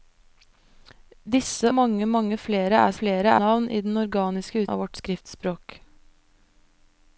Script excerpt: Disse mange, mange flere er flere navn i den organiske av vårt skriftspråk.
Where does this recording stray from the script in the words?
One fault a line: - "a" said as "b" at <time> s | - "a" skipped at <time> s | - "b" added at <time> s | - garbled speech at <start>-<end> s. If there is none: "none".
none